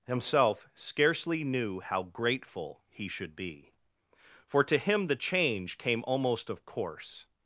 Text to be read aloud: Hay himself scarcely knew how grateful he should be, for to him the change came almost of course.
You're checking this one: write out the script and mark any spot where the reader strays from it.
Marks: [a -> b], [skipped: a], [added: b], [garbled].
[skipped: Hay] himself scarcely knew how grateful he should be, for to him the change came almost of course.